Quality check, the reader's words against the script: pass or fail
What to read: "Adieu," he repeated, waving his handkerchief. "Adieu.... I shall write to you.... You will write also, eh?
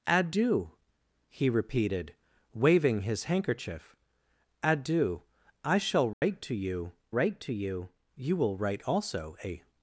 fail